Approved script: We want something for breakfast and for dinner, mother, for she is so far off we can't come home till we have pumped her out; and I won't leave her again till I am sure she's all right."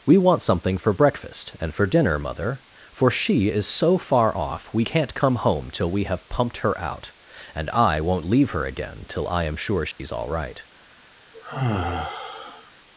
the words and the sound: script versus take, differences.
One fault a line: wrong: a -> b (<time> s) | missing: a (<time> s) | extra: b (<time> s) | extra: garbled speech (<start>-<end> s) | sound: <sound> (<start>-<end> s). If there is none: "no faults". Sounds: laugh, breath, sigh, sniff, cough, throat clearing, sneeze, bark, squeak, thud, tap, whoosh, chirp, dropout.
sound: dropout (9.9-10.0 s)
sound: sigh (11.3-12.7 s)